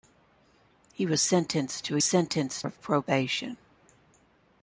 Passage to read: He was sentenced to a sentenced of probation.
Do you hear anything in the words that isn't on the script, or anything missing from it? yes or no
no